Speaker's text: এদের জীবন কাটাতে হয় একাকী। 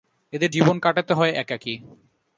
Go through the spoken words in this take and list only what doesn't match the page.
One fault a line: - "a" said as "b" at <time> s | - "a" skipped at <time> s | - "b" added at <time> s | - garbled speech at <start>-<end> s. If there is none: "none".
none